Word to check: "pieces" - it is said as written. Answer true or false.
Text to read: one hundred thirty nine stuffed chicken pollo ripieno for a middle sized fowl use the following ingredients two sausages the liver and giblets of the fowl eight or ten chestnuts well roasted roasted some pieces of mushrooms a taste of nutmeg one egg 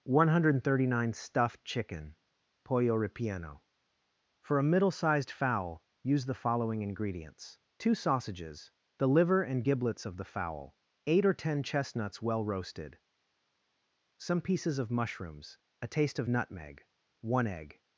true